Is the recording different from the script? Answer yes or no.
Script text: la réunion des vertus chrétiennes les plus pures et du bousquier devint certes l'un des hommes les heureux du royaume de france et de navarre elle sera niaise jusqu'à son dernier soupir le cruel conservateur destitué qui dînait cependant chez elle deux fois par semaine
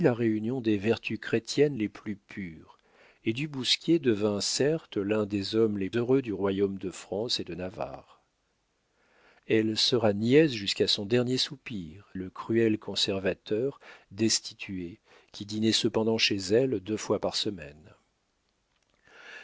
no